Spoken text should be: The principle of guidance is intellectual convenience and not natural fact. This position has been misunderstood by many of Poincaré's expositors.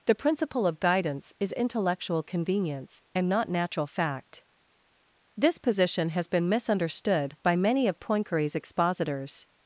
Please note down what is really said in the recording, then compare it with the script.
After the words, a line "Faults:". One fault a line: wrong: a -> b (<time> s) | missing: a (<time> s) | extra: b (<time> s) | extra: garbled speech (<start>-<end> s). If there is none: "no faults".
The principle of guidance is intellectual convenience and not natural fact. This position has been misunderstood by many of Poincaré's expositors.
Faults:
no faults